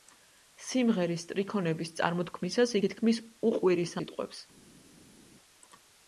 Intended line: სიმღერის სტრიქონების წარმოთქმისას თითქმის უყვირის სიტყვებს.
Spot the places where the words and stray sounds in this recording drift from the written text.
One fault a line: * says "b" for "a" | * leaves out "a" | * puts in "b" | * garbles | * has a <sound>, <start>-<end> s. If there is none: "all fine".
all fine